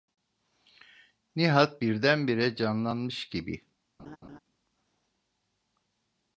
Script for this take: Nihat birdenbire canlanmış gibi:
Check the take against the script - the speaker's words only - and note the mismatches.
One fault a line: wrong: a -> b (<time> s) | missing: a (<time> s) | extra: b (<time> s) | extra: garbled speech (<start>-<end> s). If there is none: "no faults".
no faults